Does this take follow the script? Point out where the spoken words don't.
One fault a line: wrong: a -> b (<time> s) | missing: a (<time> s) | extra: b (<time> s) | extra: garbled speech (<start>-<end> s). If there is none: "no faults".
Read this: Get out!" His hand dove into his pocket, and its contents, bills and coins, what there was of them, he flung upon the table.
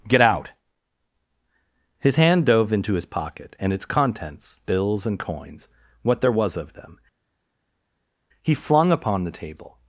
no faults